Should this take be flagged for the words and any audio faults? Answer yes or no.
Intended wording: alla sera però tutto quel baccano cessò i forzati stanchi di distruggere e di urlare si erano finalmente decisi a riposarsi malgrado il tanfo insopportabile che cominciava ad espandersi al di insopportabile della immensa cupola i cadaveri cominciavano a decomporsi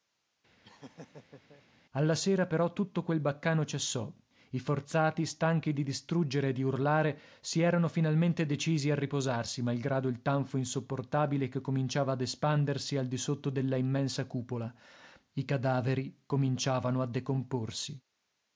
yes